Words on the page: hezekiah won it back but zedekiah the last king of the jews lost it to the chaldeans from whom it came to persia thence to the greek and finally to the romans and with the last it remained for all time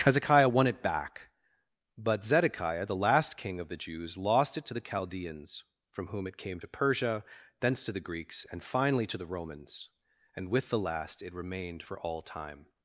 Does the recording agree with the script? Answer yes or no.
no